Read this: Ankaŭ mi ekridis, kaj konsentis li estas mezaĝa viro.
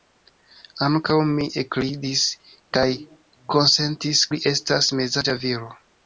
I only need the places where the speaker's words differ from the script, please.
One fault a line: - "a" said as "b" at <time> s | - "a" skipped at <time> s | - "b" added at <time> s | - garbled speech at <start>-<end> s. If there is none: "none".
none